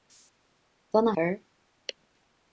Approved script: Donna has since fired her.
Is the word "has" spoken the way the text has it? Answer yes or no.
no